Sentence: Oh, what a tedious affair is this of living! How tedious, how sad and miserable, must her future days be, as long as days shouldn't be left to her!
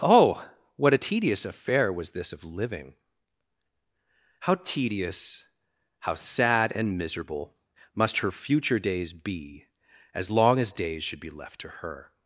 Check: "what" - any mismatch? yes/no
no